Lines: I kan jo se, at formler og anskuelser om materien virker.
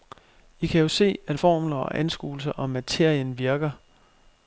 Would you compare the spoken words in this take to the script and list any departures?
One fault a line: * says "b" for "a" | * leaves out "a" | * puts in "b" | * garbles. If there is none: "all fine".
all fine